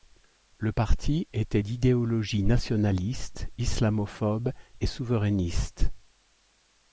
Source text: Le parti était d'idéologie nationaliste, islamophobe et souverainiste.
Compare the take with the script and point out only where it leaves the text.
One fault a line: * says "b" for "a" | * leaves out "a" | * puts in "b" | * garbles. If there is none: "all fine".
all fine